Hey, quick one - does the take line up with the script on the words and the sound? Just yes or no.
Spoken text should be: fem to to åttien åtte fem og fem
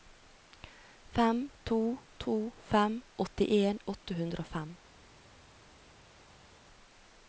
no